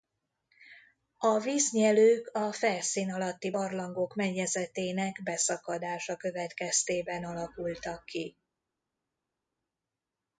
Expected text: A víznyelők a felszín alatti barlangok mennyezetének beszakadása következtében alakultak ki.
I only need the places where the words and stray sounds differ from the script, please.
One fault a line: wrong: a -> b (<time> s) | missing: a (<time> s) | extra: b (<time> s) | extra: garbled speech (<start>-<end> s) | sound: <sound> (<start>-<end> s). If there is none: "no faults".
no faults